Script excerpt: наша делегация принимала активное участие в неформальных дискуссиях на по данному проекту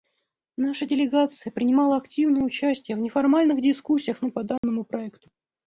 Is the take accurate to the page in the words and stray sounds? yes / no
no